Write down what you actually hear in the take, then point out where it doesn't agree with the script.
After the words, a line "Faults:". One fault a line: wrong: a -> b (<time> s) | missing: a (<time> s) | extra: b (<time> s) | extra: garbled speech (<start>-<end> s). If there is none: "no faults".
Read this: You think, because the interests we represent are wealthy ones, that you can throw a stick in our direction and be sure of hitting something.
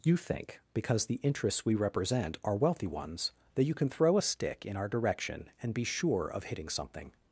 You think, because the interests we represent are wealthy ones, that you can throw a stick in our direction and be sure of hitting something.
Faults:
no faults